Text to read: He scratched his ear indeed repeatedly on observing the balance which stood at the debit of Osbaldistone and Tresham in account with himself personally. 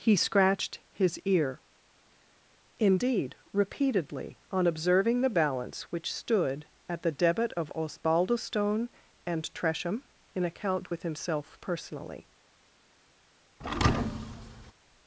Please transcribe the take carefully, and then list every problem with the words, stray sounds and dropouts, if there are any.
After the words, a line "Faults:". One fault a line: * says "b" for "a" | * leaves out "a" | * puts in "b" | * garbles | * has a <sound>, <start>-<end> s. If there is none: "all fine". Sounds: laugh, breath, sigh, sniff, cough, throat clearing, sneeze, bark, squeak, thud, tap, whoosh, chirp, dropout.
He scratched his ear indeed repeatedly on observing the balance which stood at the debit of Osbaldistone and Tresham in account with himself personally.
Faults:
* has a thud, 13.6-14.7 s